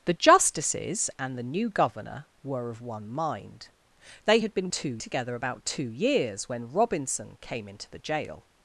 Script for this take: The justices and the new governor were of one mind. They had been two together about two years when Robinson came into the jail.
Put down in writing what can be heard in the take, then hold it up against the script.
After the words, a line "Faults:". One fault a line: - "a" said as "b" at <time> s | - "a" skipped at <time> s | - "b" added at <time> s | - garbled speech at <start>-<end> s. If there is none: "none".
The justices and the new governor were of one mind. They had been two together about two years when Robinson came into the jail.
Faults:
none